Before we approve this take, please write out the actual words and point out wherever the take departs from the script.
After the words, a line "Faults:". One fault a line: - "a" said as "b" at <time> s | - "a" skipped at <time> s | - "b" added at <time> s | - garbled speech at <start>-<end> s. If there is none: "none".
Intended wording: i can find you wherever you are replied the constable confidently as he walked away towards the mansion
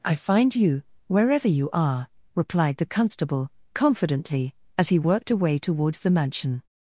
i find you wherever you are replied the constable confidently as he worked away towards the mansion
Faults:
- "can" skipped at 0.1 s
- "walked" said as "worked" at 5.0 s